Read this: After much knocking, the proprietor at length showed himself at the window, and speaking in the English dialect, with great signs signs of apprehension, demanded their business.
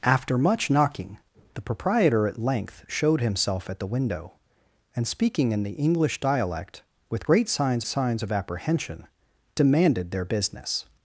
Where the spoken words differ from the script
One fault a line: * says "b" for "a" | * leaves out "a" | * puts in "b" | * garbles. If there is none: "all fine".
all fine